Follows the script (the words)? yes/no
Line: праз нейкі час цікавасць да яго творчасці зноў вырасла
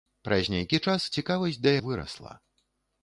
no